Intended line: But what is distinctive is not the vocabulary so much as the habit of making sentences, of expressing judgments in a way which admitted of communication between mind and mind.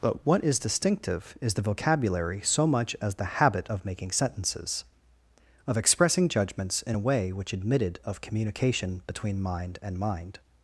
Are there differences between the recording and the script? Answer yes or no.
yes